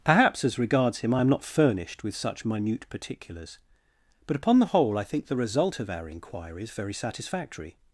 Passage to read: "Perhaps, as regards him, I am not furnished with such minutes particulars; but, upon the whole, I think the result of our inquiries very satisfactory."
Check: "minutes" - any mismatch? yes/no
yes